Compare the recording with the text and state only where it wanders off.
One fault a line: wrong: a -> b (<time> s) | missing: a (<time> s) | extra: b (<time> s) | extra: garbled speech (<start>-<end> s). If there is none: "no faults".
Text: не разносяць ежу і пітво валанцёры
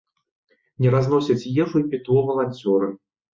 no faults